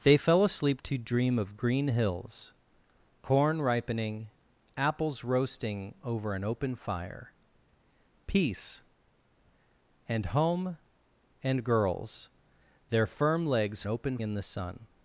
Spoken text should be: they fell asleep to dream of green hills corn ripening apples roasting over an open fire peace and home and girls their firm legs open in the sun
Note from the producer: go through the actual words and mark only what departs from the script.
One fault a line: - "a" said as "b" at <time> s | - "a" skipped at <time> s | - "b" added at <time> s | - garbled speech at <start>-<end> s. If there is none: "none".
none